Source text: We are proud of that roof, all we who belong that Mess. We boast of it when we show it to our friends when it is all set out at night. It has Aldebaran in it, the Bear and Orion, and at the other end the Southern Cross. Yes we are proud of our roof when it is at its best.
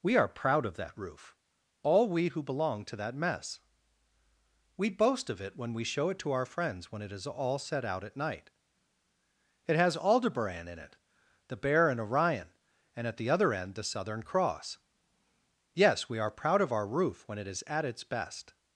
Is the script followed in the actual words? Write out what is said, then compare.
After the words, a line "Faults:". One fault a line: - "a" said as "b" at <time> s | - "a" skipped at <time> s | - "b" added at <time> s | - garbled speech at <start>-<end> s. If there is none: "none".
We are proud of that roof, all we who belong to that Mess. We boast of it when we show it to our friends when it is all set out at night. It has Aldebaran in it, the Bear and Orion, and at the other end the Southern Cross. Yes we are proud of our roof when it is at its best.
Faults:
- "to" added at 2.9 s